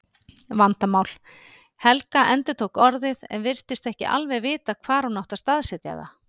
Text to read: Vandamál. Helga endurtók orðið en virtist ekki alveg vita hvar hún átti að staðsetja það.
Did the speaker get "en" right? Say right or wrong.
right